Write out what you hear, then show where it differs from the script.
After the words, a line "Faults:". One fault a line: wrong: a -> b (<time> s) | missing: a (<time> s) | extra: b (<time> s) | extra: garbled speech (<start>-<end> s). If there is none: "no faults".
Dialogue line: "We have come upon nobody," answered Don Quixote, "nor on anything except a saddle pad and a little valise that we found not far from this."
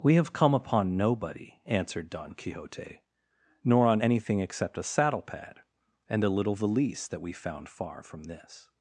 "We have come upon nobody," answered Don Quixote, "nor on anything except a saddle pad and a little valise that we found far from this."
Faults:
missing: not (7.7 s)